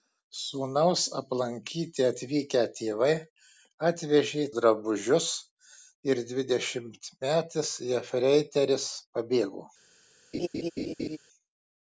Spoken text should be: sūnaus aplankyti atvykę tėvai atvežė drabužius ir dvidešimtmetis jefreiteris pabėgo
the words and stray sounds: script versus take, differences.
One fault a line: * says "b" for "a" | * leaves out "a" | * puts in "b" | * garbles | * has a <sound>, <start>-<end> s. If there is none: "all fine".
* has a laugh, 10.3-11.2 s